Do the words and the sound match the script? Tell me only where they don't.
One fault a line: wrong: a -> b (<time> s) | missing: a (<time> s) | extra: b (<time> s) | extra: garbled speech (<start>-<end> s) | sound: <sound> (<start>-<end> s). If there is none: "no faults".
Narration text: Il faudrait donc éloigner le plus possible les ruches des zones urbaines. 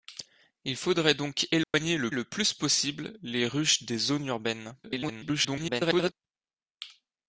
sound: dropout (1.6-1.7 s)
extra: le (2.1 s)
extra: garbled speech (4.8-6.1 s)